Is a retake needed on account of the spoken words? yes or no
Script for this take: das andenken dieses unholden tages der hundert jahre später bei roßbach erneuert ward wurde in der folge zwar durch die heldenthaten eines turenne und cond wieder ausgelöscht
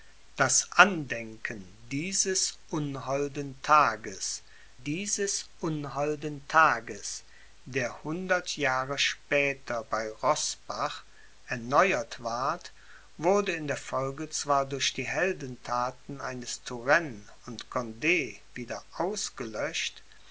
yes